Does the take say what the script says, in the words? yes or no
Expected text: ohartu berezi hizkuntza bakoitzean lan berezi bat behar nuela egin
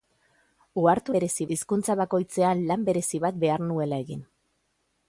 yes